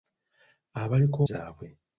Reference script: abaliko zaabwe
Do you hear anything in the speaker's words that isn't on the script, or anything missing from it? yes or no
no